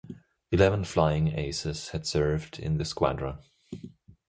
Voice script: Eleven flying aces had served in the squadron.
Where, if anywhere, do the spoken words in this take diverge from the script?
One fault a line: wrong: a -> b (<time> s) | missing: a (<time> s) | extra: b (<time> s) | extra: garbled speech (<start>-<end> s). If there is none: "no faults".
no faults